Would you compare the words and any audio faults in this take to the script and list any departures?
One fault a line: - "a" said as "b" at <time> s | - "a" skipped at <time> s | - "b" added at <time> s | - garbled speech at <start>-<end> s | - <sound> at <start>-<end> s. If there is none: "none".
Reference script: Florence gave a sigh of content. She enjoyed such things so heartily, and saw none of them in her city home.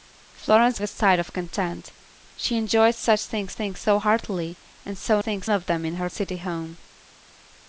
- "gave" skipped at 0.8 s
- "things" added at 3.5 s
- "none" said as "things" at 5.2 s